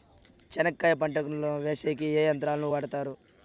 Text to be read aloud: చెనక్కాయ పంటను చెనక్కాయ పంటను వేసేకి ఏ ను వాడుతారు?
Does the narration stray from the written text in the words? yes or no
yes